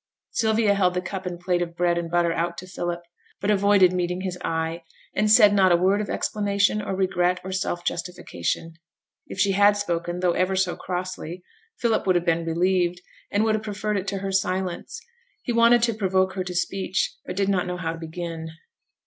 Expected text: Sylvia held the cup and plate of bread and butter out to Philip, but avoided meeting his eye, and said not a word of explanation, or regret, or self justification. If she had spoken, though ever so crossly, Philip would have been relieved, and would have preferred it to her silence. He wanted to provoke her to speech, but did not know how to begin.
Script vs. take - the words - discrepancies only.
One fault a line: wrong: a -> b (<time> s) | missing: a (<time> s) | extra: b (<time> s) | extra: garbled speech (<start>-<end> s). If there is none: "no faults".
no faults